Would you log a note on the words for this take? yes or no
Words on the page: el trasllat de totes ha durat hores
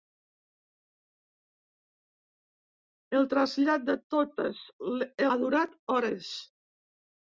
no